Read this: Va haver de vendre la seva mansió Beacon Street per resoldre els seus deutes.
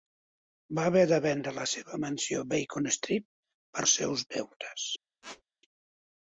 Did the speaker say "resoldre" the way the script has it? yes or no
no